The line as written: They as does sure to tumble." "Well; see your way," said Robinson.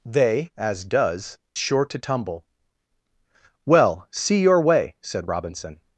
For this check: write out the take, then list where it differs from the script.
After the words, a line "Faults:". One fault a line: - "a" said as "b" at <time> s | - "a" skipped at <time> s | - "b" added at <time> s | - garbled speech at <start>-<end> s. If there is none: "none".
They as does sure to tumble." "Well; see your way," said Robinson.
Faults:
none